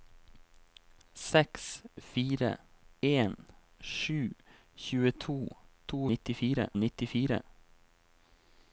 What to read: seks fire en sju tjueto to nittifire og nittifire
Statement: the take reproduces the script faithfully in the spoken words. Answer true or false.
true